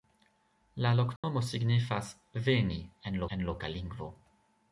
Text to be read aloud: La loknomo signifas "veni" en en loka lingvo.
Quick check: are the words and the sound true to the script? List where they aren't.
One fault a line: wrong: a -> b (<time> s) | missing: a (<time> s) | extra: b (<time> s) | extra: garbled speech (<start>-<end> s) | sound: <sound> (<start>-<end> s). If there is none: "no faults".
sound: dropout (1.2-1.2 s)